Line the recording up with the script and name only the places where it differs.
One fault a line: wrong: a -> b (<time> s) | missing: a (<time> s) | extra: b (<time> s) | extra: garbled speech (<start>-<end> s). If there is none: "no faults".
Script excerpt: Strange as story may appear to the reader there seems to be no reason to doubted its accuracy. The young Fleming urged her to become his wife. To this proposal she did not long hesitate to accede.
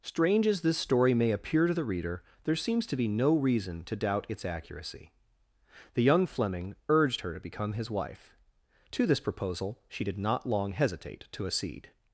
extra: this (0.6 s)
wrong: doubted -> doubt (4.0 s)